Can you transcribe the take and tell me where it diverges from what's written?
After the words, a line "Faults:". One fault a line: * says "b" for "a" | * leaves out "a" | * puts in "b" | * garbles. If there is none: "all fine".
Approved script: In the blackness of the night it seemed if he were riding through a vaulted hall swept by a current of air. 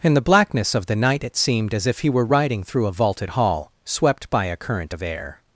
In the blackness of the night it seemed as if he were riding through a vaulted hall swept by a current of air.
Faults:
* puts in "as"